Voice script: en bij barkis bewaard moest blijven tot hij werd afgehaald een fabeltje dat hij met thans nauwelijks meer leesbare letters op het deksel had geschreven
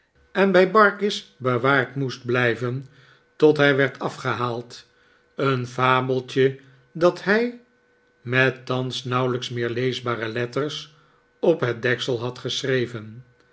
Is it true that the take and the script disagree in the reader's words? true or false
false